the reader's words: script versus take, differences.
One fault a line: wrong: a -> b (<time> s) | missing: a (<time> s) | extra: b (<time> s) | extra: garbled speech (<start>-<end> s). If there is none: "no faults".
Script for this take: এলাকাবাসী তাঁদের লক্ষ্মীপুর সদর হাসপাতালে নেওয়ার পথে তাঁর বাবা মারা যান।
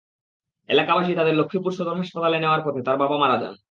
no faults